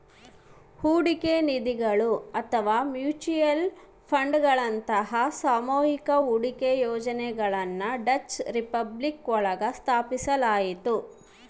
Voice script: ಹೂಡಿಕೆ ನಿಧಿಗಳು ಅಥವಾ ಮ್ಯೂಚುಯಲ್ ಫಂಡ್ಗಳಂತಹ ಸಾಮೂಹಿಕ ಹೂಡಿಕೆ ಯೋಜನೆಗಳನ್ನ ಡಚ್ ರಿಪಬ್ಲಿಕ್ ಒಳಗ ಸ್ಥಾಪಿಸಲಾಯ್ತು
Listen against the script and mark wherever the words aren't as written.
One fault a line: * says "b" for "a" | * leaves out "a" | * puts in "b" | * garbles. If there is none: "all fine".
all fine